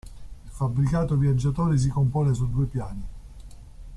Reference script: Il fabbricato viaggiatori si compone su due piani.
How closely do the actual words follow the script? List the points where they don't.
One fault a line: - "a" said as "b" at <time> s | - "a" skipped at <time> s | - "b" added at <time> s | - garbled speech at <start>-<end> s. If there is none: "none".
none